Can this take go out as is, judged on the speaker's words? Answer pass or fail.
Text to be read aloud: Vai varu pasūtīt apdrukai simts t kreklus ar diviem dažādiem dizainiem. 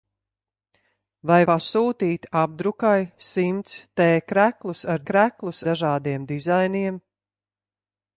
fail